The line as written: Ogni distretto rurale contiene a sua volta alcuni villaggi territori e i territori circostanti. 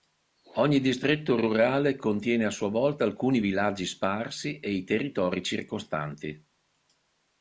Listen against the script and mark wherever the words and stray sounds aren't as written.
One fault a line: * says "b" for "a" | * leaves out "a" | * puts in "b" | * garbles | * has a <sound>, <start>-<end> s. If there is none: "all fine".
* says "sparsi" for "territori"